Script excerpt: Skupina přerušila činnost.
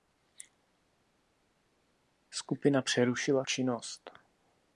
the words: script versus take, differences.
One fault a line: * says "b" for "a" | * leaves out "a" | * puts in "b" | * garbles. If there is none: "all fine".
all fine